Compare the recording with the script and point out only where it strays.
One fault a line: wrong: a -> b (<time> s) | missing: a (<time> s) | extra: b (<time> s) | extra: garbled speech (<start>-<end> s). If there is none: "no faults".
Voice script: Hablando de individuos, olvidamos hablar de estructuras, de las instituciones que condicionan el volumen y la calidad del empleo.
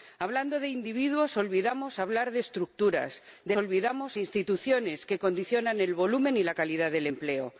wrong: las -> olvidamos (3.6 s)